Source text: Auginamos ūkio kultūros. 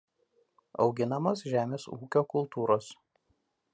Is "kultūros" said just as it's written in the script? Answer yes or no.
yes